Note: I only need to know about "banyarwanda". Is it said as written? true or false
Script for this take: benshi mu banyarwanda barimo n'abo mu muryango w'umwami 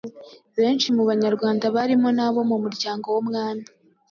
true